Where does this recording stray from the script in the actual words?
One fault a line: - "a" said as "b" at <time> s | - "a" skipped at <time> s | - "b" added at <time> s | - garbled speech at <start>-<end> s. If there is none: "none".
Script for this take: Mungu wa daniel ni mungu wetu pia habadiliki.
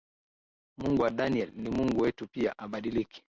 none